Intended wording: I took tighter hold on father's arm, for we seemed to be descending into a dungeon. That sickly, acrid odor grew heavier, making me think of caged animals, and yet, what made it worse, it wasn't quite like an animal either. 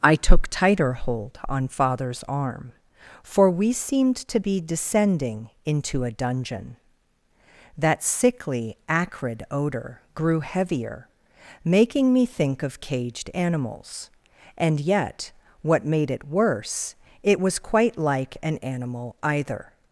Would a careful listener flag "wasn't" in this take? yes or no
yes